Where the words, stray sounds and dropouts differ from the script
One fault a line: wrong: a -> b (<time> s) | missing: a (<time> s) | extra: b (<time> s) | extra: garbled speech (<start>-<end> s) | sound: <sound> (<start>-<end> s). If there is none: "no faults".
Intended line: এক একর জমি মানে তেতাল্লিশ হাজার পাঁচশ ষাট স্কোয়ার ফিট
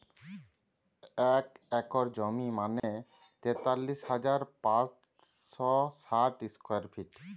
sound: dropout (2.8-2.8 s)